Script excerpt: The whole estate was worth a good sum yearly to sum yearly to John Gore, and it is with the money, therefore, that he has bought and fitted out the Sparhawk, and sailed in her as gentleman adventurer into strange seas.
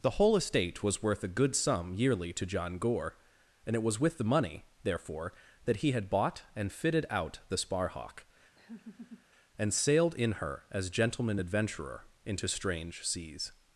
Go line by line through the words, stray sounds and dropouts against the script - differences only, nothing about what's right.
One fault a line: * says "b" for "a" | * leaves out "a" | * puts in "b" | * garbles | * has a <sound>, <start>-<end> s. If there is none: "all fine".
* leaves out "sum yearly to"
* says "was" for "is"
* says "had" for "has"
* has a laugh, 8.6-9.3 s